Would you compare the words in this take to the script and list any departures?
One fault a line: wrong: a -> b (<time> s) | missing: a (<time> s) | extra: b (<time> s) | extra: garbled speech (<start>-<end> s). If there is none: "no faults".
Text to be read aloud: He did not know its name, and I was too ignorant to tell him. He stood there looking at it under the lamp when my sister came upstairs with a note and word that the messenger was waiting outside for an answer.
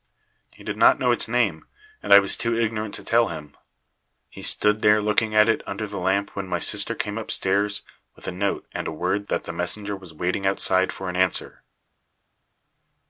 no faults